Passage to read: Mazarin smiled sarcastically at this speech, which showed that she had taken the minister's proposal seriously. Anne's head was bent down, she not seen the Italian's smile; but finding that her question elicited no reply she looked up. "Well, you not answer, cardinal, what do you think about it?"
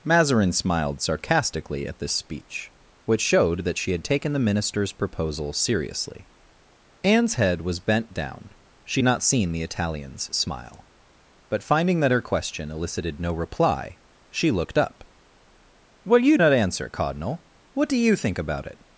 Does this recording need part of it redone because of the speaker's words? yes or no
no